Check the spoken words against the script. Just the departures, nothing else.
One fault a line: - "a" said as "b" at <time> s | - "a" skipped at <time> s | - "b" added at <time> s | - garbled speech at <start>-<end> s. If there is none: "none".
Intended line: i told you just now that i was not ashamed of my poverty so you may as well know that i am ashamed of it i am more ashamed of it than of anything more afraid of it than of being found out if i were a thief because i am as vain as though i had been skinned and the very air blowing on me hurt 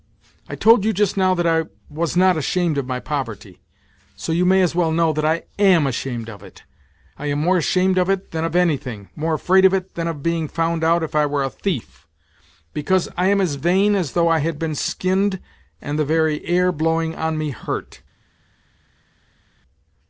none